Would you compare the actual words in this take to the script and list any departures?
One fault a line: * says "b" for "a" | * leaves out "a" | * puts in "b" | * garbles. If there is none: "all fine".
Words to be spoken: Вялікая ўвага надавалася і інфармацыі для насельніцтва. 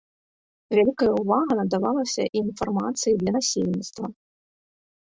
all fine